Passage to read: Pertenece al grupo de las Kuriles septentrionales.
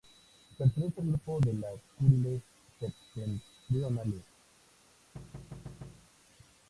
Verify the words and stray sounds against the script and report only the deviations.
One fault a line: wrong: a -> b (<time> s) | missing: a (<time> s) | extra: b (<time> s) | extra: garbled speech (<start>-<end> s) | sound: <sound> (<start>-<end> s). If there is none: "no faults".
sound: thud (5.1-6.1 s)